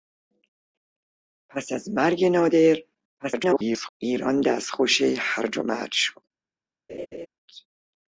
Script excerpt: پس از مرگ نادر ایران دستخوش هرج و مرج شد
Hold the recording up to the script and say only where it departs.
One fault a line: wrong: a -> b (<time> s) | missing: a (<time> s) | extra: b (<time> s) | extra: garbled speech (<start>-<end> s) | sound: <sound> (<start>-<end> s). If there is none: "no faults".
extra: garbled speech (3.2-3.9 s)
sound: laugh (6.9-7.3 s)